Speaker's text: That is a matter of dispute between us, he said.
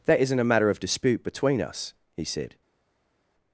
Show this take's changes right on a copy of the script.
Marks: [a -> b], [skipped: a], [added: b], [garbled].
That [is -> isn't] a matter of dispute between us, he said.